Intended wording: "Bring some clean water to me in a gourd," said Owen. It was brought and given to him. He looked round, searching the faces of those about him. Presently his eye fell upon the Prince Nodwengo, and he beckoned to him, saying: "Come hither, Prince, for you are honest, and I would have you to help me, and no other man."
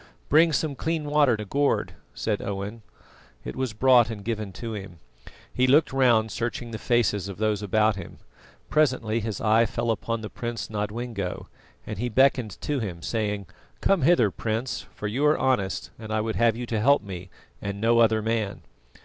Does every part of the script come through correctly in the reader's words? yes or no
no